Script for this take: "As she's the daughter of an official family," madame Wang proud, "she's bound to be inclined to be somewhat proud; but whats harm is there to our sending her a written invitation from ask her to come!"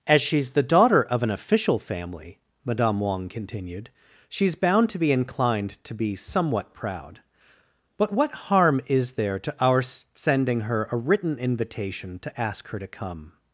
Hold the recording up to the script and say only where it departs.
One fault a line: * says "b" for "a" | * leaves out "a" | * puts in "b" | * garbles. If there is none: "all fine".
* says "continued" for "proud"
* says "what" for "whats"
* says "to" for "from"